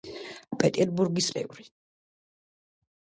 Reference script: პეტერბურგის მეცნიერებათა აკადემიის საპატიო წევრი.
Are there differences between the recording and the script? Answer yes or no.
yes